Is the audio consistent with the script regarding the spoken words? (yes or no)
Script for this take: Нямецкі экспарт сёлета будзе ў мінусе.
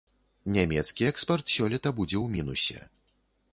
yes